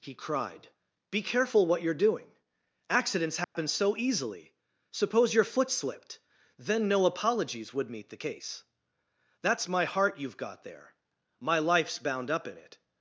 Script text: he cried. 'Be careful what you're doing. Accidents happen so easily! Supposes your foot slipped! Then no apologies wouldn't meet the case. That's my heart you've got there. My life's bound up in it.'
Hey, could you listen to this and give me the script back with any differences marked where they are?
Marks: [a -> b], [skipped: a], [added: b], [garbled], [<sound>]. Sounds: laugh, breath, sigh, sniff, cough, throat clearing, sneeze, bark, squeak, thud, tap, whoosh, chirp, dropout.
he cried. 'Be careful what you're doing. Accidents happen [dropout] so easily! [Supposes -> Suppose] your foot slipped! Then no apologies [wouldn't -> would] meet the case. That's my heart you've got there. My life's bound up in it.'